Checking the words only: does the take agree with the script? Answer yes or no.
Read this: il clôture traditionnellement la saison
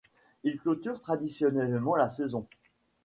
yes